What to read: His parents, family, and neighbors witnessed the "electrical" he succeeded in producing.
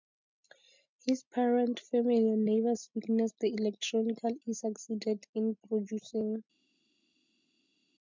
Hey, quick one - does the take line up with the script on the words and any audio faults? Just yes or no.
yes